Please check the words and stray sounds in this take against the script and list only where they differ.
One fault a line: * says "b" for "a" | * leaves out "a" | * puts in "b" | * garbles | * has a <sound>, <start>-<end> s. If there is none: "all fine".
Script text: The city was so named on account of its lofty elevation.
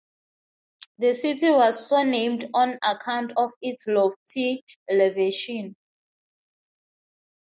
all fine